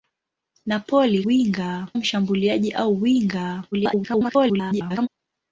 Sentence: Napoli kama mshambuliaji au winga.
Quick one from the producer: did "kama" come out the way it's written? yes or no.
no